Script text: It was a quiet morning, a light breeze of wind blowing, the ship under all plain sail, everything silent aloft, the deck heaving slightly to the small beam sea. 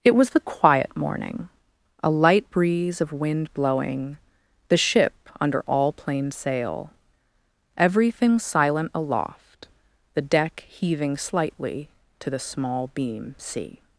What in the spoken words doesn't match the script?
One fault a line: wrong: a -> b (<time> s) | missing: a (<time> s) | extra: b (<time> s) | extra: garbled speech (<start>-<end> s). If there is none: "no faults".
wrong: a -> the (0.3 s)